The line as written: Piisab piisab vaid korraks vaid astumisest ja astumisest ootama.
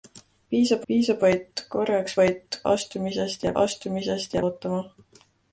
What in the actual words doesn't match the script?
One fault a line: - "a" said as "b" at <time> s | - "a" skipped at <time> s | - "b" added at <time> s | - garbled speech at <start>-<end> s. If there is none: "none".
none